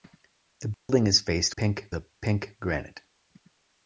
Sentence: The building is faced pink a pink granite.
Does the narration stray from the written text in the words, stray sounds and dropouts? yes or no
yes